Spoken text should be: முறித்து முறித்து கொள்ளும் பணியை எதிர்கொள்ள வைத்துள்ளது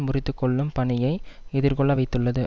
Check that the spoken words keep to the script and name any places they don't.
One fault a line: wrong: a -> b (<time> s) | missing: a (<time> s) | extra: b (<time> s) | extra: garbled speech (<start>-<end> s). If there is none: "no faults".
missing: முறித்து (0.3 s)